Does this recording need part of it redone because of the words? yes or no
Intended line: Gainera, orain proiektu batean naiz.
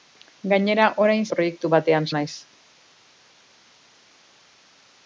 no